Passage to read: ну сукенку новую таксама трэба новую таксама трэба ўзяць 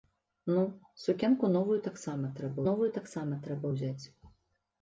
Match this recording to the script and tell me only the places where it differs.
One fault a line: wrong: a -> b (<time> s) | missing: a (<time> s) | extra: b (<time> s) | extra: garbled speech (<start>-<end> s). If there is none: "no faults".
no faults